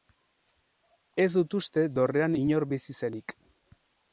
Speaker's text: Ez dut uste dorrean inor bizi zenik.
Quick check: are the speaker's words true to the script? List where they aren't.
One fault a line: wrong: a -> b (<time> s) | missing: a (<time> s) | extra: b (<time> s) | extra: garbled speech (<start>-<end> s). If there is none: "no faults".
no faults